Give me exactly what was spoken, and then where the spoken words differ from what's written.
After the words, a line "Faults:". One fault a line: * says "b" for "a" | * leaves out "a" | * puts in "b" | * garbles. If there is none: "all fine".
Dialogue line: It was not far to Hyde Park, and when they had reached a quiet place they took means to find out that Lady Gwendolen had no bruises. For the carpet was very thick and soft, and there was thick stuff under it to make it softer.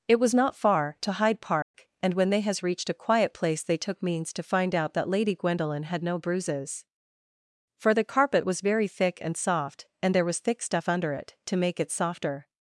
It was not far to Hyde Park, and when they has reached a quiet place they took means to find out that Lady Gwendolen had no bruises. For the carpet was very thick and soft, and there was thick stuff under it to make it softer.
Faults:
* says "has" for "had"